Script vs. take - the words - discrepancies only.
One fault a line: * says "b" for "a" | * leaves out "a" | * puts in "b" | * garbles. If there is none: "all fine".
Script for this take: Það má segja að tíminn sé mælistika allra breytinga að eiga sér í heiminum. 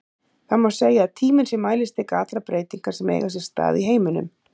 * says "sem" for "að"
* puts in "stað"